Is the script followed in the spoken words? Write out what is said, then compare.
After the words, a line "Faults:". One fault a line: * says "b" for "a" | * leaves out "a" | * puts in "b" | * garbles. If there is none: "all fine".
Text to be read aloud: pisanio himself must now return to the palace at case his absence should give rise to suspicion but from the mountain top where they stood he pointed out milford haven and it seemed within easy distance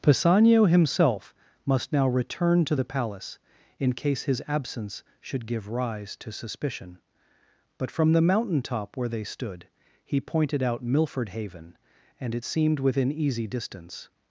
pisanio himself must now return to the palace in case his absence should give rise to suspicion but from the mountain top where they stood he pointed out milford haven and it seemed within easy distance
Faults:
* says "in" for "at"